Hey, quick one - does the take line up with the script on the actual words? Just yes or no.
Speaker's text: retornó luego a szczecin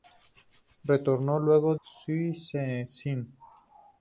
no